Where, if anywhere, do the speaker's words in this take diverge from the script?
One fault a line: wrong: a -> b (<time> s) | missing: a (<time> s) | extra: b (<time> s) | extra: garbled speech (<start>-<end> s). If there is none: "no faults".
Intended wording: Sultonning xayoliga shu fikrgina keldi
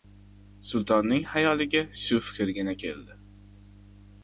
no faults